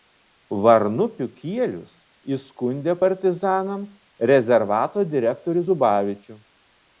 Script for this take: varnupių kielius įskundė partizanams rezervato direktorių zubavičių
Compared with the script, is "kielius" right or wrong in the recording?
right